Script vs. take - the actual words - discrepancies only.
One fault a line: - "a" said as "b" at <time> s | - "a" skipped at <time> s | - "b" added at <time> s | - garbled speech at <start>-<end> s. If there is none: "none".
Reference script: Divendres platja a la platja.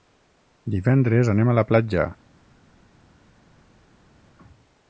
- "platja" said as "anem" at 1.4 s